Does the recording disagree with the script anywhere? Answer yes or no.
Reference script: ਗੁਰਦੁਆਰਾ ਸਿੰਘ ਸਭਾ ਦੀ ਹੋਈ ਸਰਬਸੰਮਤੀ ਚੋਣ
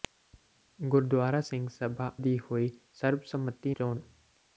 no